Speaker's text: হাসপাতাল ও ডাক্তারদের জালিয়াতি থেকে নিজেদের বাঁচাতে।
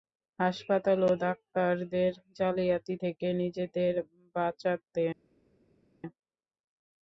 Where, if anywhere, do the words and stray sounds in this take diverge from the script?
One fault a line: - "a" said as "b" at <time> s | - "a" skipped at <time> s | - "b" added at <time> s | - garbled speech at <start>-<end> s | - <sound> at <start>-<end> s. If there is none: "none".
none